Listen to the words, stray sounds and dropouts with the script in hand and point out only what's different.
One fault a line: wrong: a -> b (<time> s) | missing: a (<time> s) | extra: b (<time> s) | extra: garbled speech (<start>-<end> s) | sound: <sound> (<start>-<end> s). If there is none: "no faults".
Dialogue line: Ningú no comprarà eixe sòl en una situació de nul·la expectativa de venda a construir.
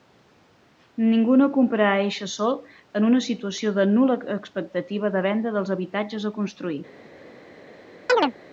extra: dels habitatges (5.6 s)
sound: chirp (8.1-8.3 s)